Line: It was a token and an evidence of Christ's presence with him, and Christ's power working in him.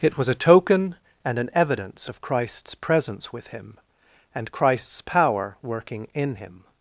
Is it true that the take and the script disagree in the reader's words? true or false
false